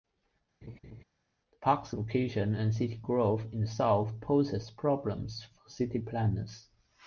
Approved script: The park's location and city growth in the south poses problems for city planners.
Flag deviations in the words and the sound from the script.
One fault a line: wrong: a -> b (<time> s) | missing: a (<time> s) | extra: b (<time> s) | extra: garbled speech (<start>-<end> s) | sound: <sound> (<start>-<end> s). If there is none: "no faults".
sound: laugh (0.6-1.0 s)